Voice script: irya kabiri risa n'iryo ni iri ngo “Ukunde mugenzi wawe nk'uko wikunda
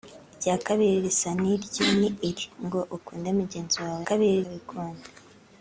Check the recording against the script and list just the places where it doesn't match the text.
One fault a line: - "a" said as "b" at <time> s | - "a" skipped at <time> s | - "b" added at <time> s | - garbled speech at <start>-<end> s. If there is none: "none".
- "nk'uko" said as "kabiri" at 4.1 s